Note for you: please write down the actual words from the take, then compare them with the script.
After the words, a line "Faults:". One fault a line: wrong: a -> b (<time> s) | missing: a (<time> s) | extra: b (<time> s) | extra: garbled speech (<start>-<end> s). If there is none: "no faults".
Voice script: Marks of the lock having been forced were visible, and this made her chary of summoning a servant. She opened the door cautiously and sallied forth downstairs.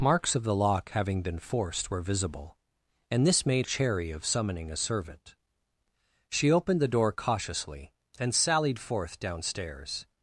Marks of the lock having been forced were visible, and this made chary of summoning a servant. She opened the door cautiously and sallied forth downstairs.
Faults:
missing: her (3.7 s)